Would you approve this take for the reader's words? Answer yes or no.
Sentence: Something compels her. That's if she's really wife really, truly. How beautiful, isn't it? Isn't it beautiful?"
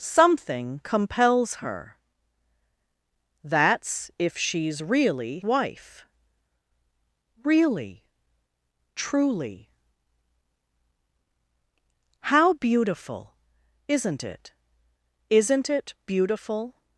yes